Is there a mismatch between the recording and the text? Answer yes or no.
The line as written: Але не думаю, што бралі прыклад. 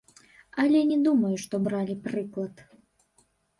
no